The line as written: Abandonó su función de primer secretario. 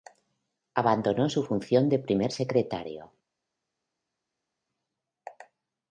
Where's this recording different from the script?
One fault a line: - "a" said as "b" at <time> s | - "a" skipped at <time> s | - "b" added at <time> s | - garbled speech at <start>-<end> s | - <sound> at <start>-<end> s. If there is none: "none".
none